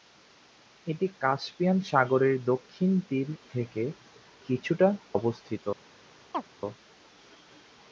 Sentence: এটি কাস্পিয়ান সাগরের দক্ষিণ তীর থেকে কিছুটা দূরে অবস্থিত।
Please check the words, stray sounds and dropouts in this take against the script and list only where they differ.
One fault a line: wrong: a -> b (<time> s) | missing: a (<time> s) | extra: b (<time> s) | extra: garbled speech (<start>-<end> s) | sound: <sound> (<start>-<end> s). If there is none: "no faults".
missing: দূরে (4.9 s)
sound: chirp (6.3-6.4 s)